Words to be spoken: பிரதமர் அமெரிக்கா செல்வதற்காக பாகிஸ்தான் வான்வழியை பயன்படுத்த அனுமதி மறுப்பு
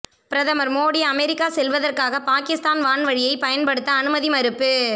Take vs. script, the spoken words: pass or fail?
fail